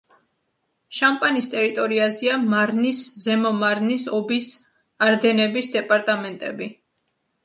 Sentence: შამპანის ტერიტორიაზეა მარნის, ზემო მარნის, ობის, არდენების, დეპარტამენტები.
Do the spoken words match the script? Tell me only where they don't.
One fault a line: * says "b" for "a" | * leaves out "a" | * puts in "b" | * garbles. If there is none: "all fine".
all fine